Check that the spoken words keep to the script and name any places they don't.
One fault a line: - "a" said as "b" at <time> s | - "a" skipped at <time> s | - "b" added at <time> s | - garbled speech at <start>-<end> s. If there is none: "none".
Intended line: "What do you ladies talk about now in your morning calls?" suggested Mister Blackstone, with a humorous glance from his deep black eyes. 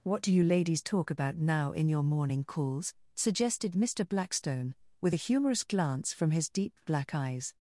none